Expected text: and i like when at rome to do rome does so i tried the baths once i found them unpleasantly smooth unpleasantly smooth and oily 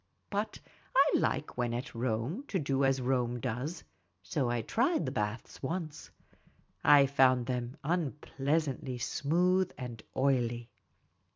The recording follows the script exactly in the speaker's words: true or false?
false